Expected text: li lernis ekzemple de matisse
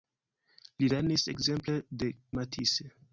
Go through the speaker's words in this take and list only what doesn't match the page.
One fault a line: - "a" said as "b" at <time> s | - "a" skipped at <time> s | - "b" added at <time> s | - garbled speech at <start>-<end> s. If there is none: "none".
none